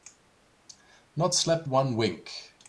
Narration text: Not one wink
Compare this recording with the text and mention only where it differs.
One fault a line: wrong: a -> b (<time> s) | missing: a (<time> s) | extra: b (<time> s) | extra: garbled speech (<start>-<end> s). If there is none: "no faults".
extra: slept (1.3 s)